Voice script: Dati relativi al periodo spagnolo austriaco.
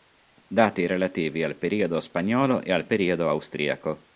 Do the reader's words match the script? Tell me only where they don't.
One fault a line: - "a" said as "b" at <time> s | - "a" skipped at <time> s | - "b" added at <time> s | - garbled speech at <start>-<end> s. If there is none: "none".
- "e al periodo" added at 2.6 s